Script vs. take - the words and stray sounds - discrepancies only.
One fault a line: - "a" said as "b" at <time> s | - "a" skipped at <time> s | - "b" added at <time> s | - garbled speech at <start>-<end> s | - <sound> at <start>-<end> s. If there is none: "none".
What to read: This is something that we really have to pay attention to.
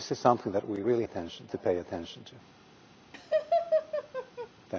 - "have" said as "attention" at 1.0 s
- laugh at 3.1-4.5 s